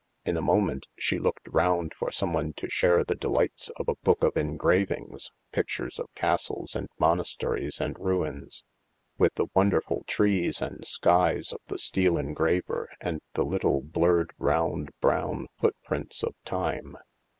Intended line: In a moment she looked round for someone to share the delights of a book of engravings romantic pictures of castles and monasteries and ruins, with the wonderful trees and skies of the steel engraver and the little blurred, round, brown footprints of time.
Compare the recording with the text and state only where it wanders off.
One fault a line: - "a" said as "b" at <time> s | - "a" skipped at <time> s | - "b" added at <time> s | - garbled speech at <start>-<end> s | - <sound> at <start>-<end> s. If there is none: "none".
- "romantic" skipped at 5.3 s